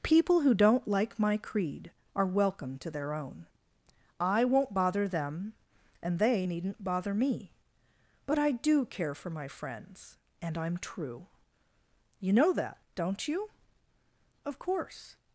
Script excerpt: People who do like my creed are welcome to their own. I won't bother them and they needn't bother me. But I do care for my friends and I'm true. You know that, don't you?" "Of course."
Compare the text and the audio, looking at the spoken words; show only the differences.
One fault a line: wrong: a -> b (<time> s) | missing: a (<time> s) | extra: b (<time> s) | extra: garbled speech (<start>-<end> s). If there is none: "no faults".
wrong: do -> don't (0.6 s)